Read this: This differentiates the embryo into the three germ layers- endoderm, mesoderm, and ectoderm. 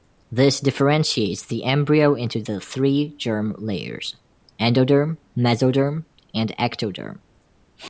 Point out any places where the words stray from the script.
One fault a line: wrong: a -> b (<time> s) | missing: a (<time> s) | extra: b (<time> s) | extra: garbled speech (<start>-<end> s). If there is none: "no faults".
no faults